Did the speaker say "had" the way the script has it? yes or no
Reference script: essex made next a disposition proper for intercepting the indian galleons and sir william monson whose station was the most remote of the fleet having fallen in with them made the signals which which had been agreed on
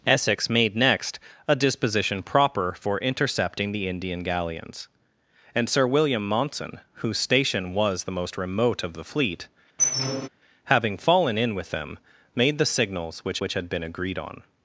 yes